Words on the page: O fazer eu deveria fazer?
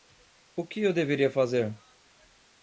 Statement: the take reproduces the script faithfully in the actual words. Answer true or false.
false